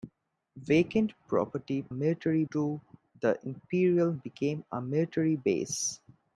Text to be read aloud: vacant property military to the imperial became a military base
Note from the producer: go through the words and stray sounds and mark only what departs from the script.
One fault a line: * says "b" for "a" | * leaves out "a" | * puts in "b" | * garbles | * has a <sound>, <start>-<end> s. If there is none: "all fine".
all fine